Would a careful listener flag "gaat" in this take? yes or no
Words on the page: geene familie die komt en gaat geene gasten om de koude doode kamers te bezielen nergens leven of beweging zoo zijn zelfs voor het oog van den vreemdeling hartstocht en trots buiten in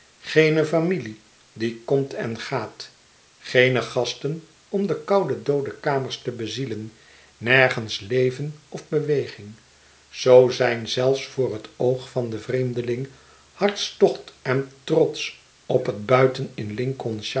no